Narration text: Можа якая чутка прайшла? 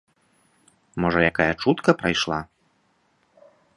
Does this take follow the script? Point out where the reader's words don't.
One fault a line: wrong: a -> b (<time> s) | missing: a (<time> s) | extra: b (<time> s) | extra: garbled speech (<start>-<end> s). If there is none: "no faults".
no faults